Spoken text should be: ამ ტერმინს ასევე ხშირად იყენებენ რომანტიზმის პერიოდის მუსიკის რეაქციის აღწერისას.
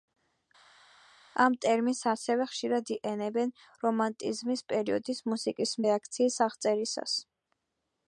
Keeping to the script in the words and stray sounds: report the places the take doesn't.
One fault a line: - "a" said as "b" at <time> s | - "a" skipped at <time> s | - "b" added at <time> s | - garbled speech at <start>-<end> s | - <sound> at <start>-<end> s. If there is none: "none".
none